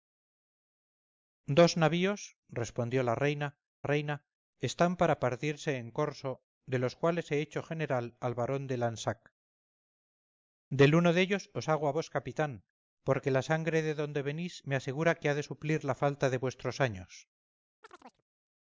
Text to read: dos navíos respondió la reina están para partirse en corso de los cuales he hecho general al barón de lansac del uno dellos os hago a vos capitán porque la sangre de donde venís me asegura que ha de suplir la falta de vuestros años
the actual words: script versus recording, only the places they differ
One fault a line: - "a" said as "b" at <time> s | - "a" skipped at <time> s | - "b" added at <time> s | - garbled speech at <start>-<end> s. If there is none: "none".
- "reina" added at 3.8 s